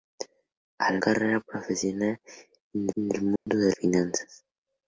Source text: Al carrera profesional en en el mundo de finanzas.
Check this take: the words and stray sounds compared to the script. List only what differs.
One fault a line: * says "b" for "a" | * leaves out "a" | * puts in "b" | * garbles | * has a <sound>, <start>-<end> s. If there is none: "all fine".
* has a dropout, 3.4-3.5 s